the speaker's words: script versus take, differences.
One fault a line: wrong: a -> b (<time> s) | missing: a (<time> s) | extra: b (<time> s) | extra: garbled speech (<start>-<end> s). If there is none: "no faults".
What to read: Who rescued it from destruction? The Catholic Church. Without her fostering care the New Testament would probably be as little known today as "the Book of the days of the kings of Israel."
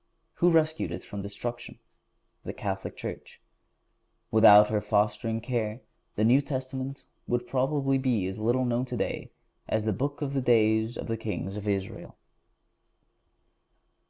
no faults